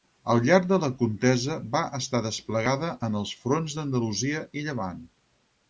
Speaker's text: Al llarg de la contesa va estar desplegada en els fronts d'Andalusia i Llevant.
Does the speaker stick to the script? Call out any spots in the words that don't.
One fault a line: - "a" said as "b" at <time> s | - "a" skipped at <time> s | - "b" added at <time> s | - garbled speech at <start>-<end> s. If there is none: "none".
none